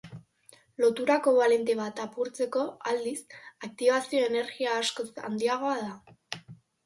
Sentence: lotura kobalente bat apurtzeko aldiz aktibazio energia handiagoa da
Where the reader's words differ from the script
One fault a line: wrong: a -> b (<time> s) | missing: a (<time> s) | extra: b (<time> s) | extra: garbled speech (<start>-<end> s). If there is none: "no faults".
extra: askoz (4.8 s)